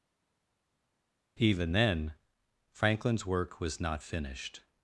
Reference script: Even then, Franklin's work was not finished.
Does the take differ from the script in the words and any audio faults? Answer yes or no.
no